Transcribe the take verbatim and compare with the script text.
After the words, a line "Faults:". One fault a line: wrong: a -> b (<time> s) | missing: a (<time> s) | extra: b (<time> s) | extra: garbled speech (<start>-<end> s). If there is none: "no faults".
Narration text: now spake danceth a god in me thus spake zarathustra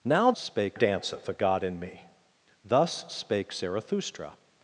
now spake danceth a god in me thus spake zarathustra
Faults:
no faults